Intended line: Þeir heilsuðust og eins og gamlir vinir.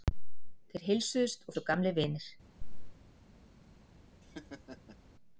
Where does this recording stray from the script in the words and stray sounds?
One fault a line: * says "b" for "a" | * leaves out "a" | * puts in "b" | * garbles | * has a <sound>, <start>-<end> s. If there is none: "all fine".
* has a chirp, 2.6-3.0 s
* has a laugh, 4.2-5.0 s